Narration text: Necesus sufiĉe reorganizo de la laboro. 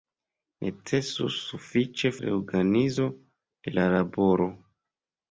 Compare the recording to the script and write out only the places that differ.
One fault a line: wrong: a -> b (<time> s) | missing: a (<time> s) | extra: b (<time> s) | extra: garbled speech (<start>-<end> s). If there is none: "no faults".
no faults